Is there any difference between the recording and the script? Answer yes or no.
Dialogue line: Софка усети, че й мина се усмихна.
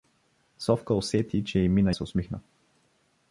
no